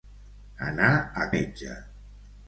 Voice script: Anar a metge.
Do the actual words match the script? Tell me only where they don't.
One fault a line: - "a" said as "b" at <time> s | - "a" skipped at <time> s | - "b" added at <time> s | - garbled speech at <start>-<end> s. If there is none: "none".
none